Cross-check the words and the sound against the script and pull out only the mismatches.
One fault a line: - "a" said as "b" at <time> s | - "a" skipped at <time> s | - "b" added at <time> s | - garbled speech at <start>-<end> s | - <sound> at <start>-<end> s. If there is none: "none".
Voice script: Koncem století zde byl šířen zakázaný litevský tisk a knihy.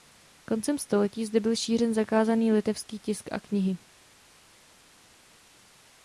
none